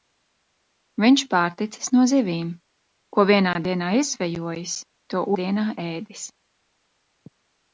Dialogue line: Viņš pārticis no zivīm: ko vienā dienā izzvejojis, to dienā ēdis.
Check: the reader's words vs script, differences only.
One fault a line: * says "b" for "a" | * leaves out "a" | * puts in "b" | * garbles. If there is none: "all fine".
all fine